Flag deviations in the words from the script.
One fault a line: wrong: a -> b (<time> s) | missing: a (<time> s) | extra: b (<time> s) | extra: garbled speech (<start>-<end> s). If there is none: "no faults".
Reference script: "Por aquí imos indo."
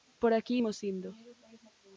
no faults